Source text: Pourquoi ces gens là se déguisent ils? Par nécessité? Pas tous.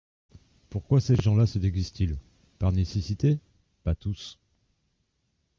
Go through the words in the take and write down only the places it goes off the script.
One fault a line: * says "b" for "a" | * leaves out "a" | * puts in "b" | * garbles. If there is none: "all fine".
all fine